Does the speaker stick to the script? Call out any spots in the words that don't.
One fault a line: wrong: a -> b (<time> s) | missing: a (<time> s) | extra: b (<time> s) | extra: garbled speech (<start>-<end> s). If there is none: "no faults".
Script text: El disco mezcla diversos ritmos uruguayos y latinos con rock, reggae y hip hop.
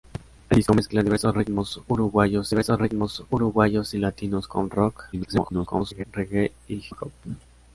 extra: diversos ritmos uruguayos (2.5 s)
extra: garbled speech (5.1-6.0 s)
missing: hip (6.7 s)